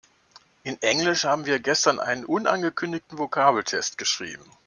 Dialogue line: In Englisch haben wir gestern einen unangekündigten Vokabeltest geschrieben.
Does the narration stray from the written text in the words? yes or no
no